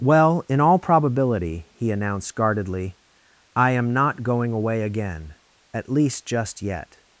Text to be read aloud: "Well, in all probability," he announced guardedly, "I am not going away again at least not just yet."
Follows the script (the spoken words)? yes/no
no